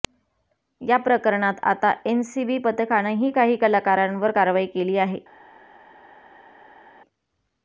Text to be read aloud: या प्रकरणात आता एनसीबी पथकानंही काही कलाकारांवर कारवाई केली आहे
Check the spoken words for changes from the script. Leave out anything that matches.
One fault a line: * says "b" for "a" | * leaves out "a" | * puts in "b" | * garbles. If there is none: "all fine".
all fine